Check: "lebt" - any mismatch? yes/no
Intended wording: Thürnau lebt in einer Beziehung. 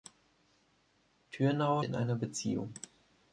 yes